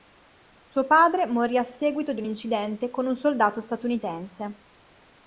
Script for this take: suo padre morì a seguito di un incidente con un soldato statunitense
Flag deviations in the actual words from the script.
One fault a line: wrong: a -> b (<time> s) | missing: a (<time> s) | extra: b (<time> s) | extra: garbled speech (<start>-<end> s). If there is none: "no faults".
no faults